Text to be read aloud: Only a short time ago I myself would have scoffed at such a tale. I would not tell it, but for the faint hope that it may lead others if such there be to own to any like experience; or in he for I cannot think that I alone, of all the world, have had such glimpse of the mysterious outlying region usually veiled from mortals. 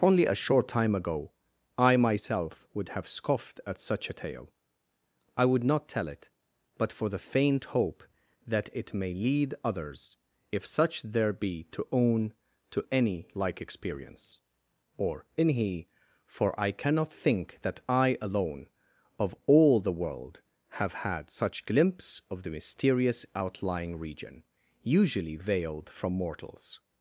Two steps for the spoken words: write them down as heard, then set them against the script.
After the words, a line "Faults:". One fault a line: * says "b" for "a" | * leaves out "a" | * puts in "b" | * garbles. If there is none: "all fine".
Only a short time ago I myself would have scoffed at such a tale. I would not tell it, but for the faint hope that it may lead others if such there be to own to any like experience; or in he for I cannot think that I alone, of all the world, have had such glimpse of the mysterious outlying region usually veiled from mortals.
Faults:
all fine